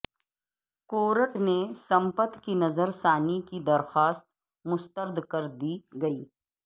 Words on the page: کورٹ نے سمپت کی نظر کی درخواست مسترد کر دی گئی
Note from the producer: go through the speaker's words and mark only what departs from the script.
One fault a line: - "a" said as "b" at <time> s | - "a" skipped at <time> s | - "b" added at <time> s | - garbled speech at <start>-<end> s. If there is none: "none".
- "ثانی" added at 2.9 s